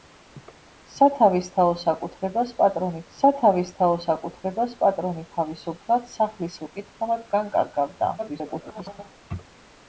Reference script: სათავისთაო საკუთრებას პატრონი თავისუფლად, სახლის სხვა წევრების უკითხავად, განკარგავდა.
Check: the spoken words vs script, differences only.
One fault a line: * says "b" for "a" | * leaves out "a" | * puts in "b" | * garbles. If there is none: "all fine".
* puts in "სათავისთაო საკუთრებას პატრონი"
* leaves out "სხვა წევრების"
* garbles